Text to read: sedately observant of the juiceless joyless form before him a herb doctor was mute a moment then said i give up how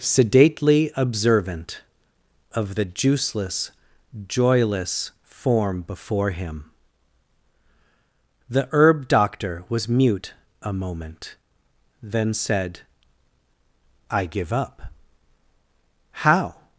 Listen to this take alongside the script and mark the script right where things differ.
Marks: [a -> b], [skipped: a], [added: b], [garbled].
sedately observant of the juiceless joyless form before him [a -> the] herb doctor was mute a moment then said i give up how